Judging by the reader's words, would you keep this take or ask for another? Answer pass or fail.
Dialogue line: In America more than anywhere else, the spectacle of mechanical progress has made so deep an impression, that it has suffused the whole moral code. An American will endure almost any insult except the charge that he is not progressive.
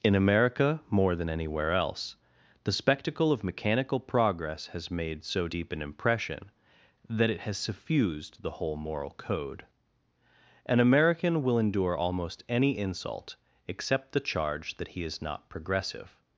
pass